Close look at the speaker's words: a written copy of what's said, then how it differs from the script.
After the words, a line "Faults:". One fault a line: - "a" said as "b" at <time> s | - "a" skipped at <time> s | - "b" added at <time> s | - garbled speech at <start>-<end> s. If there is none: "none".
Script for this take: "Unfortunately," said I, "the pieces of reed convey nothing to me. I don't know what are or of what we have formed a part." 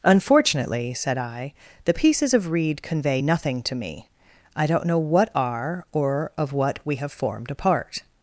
"Unfortunately," said I, "the pieces of reed convey nothing to me. I don't know what are or of what we have formed a part."
Faults:
none